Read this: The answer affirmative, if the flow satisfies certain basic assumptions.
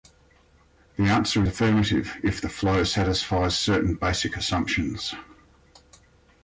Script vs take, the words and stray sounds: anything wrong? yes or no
no